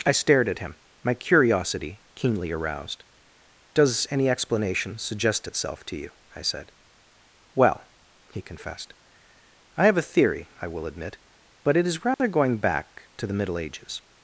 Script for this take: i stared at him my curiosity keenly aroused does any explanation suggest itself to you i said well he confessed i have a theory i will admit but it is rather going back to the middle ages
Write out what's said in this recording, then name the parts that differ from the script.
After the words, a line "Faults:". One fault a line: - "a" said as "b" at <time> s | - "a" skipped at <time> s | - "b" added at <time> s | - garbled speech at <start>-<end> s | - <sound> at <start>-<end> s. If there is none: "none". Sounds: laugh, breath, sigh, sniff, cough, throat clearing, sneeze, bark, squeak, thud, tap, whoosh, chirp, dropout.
i stared at him my curiosity keenly aroused does any explanation suggest itself to you i said well he confessed i have a theory i will admit but it is rather going back to the middle ages
Faults:
- dropout at 12.1-12.2 s